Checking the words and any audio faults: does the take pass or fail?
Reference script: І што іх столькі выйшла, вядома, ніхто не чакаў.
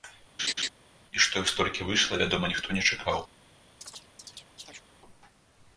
fail